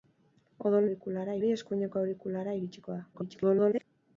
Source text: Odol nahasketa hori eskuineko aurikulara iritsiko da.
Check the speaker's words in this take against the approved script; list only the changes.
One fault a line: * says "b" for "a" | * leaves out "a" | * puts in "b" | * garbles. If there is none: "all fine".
* says "aurikulara" for "nahasketa"
* garbles